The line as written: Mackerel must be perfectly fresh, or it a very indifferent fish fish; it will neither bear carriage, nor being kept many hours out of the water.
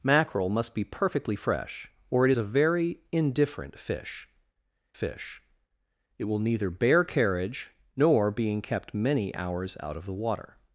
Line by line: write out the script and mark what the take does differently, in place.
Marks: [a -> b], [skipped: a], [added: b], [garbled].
Mackerel must be perfectly fresh, or it a very indifferent fish fish; it will neither bear carriage, nor being kept many hours out of the water.